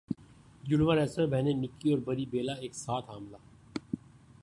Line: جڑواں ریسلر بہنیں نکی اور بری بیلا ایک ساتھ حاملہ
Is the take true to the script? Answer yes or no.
yes